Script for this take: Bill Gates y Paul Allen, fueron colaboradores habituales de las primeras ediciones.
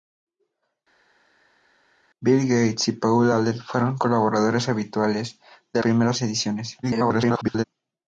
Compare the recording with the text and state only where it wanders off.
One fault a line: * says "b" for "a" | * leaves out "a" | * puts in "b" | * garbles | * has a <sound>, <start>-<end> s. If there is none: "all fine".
* leaves out "las"
* garbles